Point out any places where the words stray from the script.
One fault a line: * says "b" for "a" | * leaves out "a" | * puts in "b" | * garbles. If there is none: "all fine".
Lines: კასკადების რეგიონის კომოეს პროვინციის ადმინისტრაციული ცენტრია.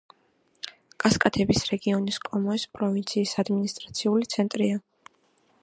all fine